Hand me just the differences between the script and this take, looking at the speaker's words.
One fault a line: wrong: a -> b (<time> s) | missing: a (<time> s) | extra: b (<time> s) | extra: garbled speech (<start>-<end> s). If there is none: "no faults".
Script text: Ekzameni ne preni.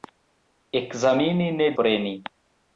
no faults